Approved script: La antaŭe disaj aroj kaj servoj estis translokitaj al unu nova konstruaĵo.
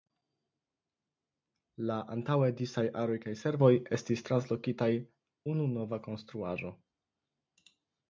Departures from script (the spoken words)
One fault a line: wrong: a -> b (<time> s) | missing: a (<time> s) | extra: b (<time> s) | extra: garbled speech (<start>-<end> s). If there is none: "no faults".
missing: al (4.9 s)